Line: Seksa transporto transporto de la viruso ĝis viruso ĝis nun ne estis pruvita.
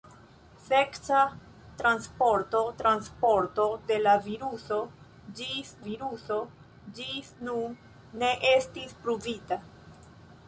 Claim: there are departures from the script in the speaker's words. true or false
false